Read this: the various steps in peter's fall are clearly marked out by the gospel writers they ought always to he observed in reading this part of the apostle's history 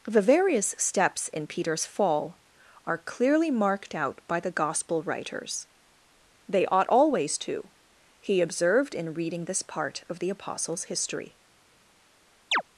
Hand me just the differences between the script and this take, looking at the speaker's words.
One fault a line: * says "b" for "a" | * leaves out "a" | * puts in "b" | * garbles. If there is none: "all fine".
all fine